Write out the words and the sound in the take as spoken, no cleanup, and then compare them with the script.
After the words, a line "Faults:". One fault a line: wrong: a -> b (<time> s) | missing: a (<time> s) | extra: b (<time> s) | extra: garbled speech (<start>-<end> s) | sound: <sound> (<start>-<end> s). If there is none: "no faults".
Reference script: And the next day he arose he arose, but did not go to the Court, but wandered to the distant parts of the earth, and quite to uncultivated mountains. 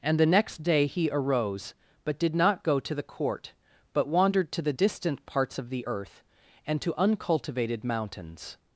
And the next day he arose, but did not go to the Court, but wandered to the distant parts of the earth, and to uncultivated mountains.
Faults:
missing: he arose (1.7 s)
missing: quite (6.8 s)